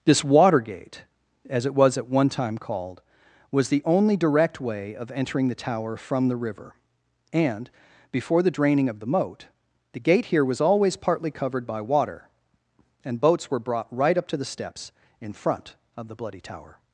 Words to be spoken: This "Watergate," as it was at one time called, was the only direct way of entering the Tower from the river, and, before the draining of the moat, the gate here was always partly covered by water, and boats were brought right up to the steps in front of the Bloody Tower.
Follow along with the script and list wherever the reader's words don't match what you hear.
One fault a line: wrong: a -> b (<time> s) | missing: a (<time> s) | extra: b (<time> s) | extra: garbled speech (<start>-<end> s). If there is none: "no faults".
no faults